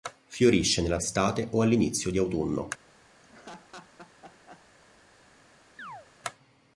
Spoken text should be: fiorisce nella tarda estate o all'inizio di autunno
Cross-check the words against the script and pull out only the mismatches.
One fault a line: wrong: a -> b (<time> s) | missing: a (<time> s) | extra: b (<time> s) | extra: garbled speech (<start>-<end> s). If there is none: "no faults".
missing: tarda (1.0 s)